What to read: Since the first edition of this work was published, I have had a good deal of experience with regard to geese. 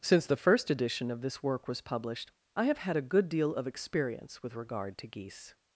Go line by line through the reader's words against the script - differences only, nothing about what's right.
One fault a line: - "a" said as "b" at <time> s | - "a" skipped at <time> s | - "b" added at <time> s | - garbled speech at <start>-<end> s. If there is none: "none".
none